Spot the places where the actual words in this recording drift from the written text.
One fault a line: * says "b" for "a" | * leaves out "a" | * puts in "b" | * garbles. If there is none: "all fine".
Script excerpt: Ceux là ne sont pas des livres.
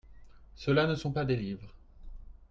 all fine